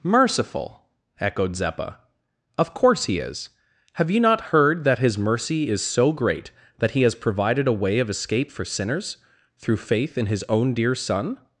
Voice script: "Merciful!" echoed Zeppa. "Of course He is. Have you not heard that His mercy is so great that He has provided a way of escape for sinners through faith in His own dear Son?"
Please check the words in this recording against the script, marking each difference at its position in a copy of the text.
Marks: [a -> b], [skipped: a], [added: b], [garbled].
"Merciful!" echoed Zeppa. "Of course He is. Have you not heard that His mercy is so great that He has provided a way of escape for sinners through faith in His own dear Son?"